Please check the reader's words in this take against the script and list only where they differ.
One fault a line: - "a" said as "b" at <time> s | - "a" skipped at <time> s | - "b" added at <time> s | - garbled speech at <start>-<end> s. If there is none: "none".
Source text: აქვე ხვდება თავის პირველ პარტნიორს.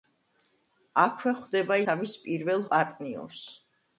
none